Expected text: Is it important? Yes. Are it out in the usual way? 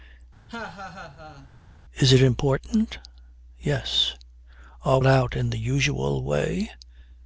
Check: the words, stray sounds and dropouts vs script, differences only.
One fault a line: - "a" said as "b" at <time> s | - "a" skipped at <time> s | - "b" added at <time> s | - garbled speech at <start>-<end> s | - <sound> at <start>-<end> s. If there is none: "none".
- laugh at 0.5-1.5 s